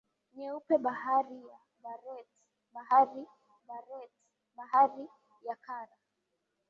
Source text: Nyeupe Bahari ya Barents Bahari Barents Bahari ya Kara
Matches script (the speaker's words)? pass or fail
pass